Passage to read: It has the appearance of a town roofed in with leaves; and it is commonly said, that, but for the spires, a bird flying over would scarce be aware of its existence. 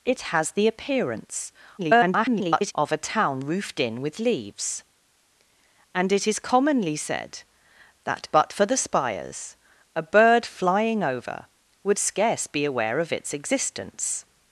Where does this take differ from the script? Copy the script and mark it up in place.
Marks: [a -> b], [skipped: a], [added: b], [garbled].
It has the appearance [garbled] of a town roofed in with leaves; and it is commonly said, that, but for the spires, a bird flying over would scarce be aware of its existence.